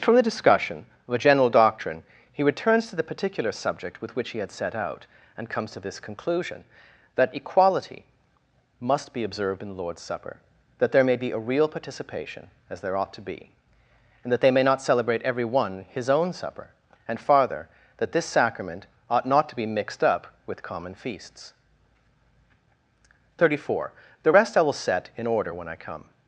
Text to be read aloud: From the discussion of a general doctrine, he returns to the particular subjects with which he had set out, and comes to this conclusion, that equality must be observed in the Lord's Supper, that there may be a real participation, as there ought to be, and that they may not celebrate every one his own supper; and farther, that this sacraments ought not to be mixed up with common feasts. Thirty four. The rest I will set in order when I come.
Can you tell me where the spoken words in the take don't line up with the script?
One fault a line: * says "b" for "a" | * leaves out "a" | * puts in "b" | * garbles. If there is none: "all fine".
* says "subject" for "subjects"
* says "sacrament" for "sacraments"